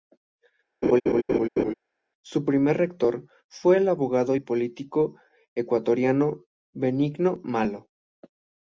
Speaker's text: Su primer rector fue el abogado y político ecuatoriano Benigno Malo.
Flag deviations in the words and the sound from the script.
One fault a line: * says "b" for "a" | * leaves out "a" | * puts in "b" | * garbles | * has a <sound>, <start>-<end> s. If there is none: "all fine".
* has a laugh, 0.8-1.7 s